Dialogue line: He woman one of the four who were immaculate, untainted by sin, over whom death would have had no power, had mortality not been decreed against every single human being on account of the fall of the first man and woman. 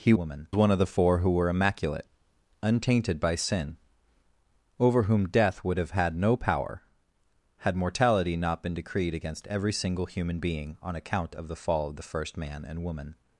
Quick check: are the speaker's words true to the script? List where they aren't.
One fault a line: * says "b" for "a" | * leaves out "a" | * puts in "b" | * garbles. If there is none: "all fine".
all fine